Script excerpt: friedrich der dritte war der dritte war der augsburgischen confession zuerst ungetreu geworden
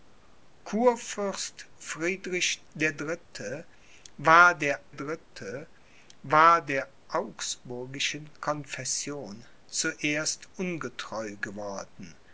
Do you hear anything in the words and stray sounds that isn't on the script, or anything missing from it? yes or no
no